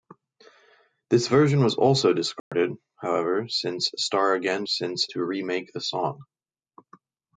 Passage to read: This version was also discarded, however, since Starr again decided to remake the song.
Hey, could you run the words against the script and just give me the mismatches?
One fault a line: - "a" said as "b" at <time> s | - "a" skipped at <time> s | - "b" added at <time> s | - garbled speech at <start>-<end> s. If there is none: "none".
- "decided" said as "since" at 4.6 s